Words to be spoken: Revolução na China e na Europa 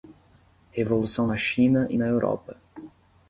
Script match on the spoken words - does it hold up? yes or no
yes